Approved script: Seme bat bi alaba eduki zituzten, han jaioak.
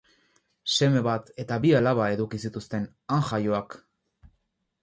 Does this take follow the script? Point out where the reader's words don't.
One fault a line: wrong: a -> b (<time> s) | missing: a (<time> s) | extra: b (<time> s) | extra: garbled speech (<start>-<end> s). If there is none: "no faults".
extra: eta (1.4 s)